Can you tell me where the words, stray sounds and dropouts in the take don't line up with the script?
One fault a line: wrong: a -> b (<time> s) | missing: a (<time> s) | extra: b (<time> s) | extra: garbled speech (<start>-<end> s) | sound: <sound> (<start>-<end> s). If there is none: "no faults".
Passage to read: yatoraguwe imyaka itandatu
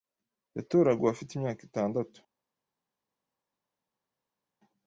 extra: afite (1.1 s)